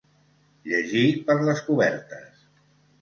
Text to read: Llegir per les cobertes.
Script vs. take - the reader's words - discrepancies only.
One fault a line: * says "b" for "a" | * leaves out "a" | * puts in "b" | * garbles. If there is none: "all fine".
all fine